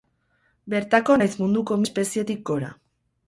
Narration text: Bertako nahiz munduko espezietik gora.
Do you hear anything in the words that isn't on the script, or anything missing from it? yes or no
no